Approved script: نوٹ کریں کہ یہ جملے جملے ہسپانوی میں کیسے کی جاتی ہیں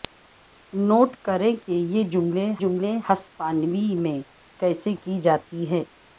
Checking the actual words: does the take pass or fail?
pass